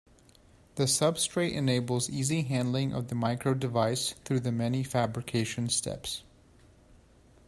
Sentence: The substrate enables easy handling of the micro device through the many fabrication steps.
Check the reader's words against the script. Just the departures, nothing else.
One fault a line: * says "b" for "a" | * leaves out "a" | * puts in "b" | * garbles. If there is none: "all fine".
all fine